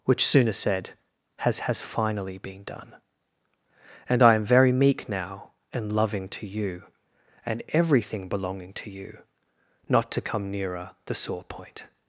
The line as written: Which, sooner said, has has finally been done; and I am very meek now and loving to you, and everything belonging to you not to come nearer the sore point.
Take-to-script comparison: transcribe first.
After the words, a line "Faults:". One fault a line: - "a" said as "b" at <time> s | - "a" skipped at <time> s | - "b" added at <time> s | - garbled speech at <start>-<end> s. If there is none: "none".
Which, sooner said, has has finally been done; and I am very meek now and loving to you, and everything belonging to you not to come nearer the sore point.
Faults:
none